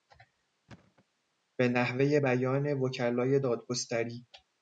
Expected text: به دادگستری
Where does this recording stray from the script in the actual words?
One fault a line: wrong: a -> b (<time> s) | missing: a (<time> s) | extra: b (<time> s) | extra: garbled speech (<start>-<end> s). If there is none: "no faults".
extra: نحوهی بیان وکلای (1.7 s)